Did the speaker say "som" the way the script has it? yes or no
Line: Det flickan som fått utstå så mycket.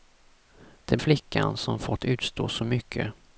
yes